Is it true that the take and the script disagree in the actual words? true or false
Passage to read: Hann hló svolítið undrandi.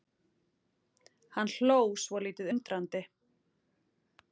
false